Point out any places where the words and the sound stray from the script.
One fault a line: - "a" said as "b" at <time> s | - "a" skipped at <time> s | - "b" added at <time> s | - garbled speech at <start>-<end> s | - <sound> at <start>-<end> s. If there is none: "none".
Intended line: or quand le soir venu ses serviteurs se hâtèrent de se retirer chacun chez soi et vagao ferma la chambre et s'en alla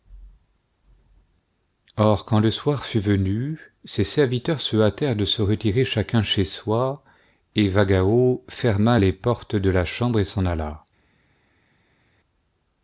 - "fut" added at 2.9 s
- "les portes de" added at 9.0 s